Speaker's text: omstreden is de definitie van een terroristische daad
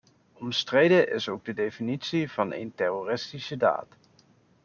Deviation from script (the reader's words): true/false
true